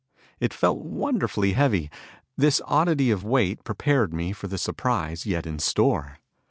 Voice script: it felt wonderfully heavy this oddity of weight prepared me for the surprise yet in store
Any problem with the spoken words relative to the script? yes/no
no